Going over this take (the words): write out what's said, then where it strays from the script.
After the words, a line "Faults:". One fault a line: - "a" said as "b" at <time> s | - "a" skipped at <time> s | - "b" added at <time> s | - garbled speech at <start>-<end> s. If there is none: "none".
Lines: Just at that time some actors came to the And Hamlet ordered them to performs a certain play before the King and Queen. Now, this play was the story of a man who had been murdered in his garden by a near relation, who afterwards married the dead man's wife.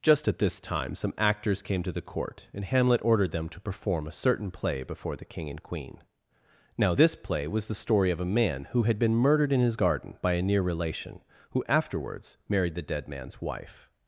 Just at this time some actors came to the Court, and Hamlet ordered them to perform a certain play before the King and Queen. Now, this play was the story of a man who had been murdered in his garden by a near relation, who afterwards married the dead man's wife.
Faults:
- "that" said as "this" at 0.4 s
- "Court" added at 2.0 s
- "performs" said as "perform" at 3.6 s